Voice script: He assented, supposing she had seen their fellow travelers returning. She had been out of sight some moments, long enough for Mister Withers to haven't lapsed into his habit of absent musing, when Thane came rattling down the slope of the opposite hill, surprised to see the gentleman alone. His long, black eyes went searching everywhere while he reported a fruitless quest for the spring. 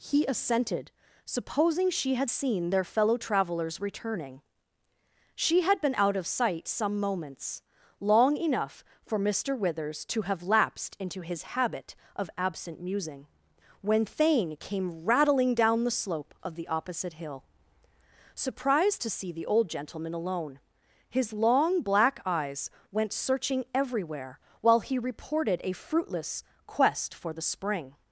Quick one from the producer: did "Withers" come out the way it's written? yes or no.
yes